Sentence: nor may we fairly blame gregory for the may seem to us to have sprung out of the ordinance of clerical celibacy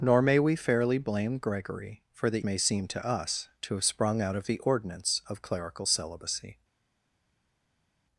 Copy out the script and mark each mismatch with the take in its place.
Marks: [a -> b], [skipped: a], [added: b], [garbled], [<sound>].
nor may we fairly blame gregory for the may seem to us to have sprung out of the ordinance of clerical celibacy